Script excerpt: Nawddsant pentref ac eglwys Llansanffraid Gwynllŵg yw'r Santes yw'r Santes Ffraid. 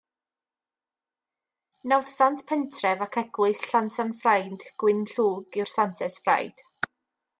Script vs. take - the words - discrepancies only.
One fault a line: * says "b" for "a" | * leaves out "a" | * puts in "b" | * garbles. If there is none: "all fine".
* leaves out "yw'r Santes"